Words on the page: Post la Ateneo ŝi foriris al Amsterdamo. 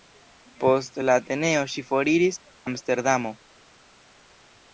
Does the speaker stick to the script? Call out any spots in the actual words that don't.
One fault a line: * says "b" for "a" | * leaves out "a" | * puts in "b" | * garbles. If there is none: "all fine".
* leaves out "al"